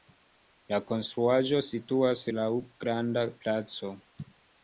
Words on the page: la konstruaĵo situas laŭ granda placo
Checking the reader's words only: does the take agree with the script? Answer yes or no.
yes